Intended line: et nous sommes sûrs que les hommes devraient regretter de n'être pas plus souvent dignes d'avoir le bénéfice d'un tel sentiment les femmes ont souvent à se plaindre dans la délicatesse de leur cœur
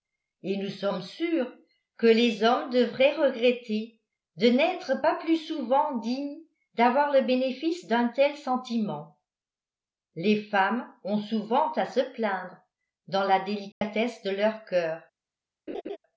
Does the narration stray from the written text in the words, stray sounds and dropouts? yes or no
yes